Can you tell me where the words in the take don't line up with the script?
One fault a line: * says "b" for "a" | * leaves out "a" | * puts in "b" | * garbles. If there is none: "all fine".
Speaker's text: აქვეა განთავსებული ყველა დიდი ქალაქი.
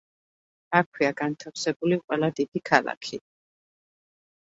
all fine